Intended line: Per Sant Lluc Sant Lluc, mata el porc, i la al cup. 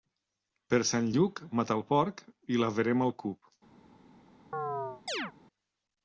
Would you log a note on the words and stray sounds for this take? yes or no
yes